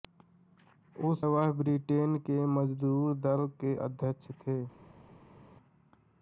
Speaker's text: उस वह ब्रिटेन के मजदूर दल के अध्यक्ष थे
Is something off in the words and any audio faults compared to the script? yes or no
no